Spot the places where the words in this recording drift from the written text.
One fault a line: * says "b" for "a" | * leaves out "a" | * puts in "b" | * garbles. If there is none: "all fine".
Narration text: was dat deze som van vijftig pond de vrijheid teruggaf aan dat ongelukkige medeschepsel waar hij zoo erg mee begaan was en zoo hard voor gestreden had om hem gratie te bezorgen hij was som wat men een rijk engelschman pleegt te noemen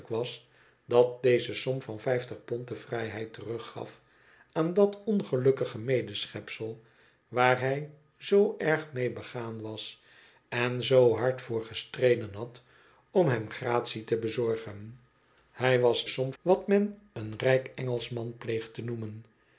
all fine